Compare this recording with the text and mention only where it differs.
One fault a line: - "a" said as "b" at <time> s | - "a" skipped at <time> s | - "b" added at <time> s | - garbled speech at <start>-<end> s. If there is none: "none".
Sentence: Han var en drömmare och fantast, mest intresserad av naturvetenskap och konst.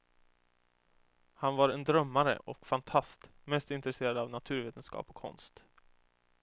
none